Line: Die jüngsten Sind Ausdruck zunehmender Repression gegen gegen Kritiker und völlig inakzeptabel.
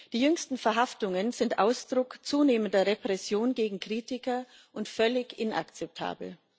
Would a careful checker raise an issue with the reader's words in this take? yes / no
yes